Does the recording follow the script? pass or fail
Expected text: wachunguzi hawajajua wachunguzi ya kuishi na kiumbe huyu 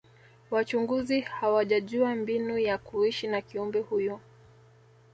fail